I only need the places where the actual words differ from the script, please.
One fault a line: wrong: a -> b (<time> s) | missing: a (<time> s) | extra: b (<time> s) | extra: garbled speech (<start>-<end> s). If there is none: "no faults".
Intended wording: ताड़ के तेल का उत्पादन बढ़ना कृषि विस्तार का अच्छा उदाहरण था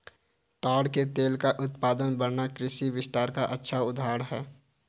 wrong: था -> है (4.2 s)